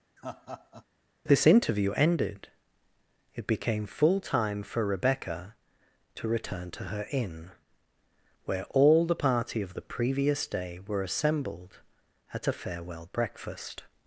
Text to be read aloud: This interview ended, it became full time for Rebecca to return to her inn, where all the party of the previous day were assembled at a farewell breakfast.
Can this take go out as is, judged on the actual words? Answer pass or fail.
pass